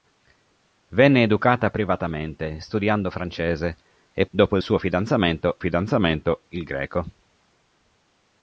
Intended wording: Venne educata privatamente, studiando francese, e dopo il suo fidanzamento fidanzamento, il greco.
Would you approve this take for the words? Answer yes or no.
yes